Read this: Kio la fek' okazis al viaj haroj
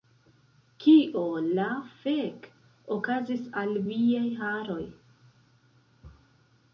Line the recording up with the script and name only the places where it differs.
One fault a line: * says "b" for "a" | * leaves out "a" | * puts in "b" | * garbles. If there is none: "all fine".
all fine